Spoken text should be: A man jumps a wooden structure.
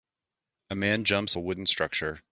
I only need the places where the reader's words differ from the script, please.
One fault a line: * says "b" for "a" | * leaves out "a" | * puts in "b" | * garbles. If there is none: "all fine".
all fine